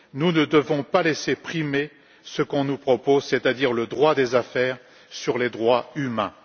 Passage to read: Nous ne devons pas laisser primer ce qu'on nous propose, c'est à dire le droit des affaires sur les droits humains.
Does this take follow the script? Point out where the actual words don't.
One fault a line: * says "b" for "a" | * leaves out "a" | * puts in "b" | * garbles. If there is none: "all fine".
all fine